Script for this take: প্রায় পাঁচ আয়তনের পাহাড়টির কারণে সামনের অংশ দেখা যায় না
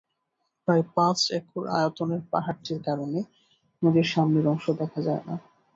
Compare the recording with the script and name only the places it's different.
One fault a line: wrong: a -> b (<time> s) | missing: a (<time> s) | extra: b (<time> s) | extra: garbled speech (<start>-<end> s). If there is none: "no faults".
extra: একর (1.4 s)
extra: নদীর (3.8 s)